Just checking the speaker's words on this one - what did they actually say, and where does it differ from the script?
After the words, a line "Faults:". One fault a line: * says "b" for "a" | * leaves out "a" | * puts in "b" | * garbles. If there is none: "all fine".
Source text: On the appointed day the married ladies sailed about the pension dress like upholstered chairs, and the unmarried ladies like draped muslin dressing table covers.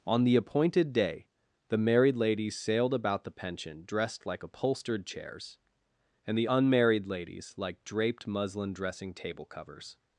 On the appointed day the married ladies sailed about the pension dressed like upholstered chairs, and the unmarried ladies like draped muslin dressing table covers.
Faults:
* says "dressed" for "dress"